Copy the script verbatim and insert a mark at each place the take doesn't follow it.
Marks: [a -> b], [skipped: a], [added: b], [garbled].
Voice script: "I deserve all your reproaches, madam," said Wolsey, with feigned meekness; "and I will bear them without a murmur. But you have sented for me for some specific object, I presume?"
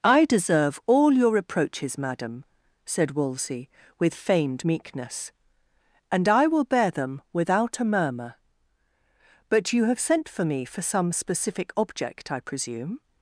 "I deserve all your reproaches, madam," said Wolsey, with feigned meekness; "and I will bear them without a murmur. But you have [sented -> sent] for me for some specific object, I presume?"